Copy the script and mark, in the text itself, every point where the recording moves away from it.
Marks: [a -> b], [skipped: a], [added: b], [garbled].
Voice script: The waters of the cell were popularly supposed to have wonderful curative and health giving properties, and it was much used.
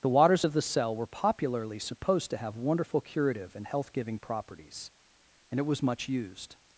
The waters of the cell were popularly supposed to have wonderful curative and health giving properties, and it was much used.